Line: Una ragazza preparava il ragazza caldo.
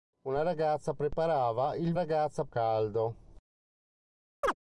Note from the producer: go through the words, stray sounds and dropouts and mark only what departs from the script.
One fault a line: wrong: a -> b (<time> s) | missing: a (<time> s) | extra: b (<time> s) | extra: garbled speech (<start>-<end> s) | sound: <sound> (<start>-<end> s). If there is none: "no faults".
sound: chirp (4.4-4.5 s)